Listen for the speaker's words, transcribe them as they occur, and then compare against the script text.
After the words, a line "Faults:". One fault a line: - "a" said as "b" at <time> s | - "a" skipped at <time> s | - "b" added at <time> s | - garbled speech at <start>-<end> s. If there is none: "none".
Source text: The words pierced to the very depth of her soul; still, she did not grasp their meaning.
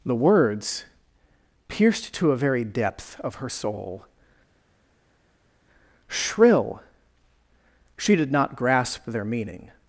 The words pierced to a very depth of her soul; shrill, she did not grasp their meaning.
Faults:
- "the" said as "a" at 2.3 s
- "still" said as "shrill" at 6.1 s